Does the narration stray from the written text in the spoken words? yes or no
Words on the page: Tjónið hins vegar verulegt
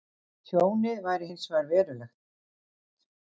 yes